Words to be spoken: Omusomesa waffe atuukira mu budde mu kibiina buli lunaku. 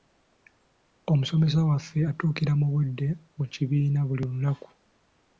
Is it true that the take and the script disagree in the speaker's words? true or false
false